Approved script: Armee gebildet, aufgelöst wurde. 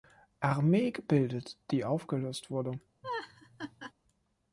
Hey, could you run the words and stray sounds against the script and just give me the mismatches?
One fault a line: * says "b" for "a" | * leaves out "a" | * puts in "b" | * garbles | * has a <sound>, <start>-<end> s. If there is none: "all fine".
* puts in "die"
* has a laugh, 3.0-3.9 s